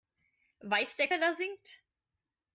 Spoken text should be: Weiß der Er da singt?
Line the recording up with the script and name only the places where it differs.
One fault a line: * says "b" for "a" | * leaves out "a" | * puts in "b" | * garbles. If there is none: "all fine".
all fine